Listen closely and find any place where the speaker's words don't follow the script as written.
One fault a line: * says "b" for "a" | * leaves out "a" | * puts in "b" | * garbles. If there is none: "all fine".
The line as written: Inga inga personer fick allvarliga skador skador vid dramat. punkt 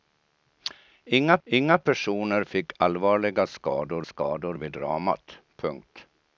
all fine